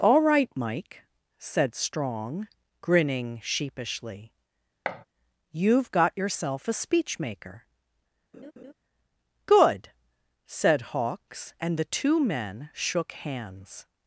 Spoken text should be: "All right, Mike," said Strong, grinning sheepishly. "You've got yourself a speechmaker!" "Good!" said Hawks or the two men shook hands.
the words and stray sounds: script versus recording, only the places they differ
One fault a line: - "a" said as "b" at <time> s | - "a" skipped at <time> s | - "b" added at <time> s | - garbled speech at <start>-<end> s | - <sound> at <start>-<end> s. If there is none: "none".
- thud at 4.9-5.1 s
- laugh at 8.3-8.7 s
- "or" said as "and" at 11.6 s